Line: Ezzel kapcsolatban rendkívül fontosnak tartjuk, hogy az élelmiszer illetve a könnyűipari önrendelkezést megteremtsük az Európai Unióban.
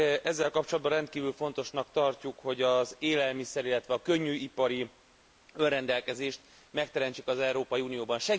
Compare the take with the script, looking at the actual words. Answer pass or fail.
pass